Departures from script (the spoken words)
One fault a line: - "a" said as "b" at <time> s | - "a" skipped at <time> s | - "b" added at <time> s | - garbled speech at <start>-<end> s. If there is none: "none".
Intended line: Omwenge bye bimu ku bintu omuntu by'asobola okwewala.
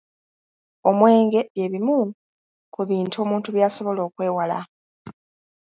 none